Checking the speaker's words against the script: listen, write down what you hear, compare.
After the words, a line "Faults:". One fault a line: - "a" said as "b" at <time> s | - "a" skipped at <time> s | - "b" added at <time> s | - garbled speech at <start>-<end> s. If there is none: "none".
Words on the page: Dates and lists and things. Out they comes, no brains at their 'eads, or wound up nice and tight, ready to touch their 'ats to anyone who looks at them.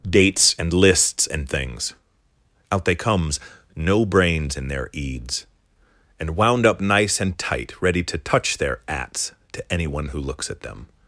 Dates and lists and things. Out they comes, no brains in their 'eads, and wound up nice and tight, ready to touch their 'ats to anyone who looks at them.
Faults:
- "at" said as "in" at 4.5 s
- "or" said as "and" at 6.2 s